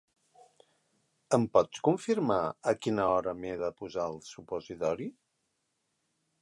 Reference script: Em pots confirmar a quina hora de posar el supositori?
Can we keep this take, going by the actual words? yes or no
no